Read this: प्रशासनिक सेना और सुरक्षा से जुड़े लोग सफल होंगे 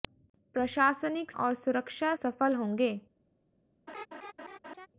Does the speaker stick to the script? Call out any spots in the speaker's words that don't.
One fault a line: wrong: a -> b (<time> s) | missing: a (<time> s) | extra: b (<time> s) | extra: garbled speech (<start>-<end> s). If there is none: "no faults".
missing: सेना (1.3 s)
missing: से जुड़े लोग (2.1 s)